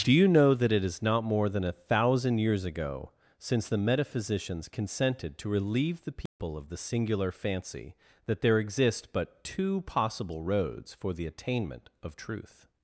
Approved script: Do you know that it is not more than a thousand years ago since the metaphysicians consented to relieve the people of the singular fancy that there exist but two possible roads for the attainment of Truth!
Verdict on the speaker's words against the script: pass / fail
pass